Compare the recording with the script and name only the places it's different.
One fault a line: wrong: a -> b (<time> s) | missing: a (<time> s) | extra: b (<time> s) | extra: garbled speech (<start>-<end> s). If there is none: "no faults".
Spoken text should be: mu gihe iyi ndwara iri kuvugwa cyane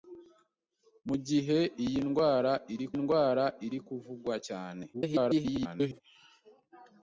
extra: ndwara iri (3.0 s)
extra: garbled speech (4.9-6.0 s)